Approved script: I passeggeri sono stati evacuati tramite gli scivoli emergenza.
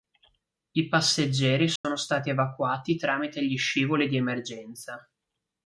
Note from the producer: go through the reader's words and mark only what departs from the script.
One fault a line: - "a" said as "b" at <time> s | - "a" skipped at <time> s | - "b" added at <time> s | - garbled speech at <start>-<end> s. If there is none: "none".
- "di" added at 4.1 s